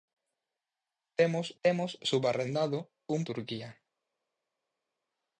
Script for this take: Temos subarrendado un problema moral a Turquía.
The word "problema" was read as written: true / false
false